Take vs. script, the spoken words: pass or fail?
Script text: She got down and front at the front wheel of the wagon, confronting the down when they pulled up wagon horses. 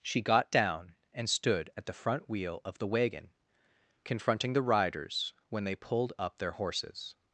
fail